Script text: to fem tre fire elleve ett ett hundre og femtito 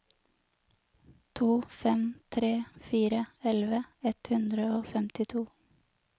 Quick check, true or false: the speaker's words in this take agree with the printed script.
false